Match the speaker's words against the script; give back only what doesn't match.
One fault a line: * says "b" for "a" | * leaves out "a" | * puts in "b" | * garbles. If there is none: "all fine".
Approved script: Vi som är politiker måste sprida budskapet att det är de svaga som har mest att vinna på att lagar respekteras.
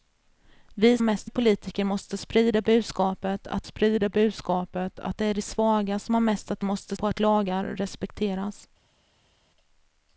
* says "mest" for "som"
* puts in "sprida budskapet att"
* says "måste" for "vinna"